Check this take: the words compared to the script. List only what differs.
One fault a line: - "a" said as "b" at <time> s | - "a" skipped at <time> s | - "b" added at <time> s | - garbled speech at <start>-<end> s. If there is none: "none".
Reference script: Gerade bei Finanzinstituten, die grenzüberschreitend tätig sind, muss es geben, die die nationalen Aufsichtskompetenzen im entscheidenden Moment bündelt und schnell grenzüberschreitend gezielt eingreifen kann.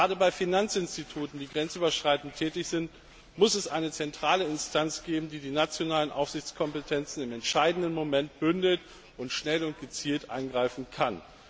- "eine zentrale Instanz" added at 3.7 s
- "grenzüberschreitend" said as "und" at 9.6 s